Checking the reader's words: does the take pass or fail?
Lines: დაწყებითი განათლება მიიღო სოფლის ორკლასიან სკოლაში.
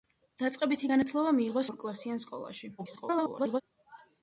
fail